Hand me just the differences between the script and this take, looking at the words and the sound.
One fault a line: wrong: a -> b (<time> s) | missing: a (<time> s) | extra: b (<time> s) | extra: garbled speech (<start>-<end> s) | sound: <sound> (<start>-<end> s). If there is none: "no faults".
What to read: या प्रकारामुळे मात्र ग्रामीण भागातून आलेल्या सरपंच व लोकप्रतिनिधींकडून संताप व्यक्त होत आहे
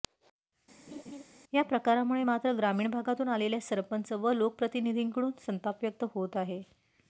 sound: laugh (0.9-1.2 s)